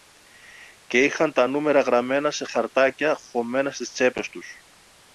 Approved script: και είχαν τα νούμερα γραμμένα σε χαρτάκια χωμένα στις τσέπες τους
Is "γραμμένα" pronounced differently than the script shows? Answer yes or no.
no